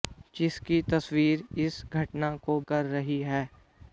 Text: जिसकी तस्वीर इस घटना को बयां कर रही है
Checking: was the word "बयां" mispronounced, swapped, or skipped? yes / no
yes